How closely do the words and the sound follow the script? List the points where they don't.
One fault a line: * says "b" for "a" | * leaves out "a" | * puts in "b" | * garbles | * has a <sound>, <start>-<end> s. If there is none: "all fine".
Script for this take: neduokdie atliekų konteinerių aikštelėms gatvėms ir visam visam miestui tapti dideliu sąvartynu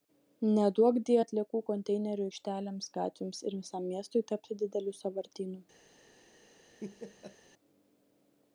* leaves out "visam"
* has a laugh, 6.8-7.4 s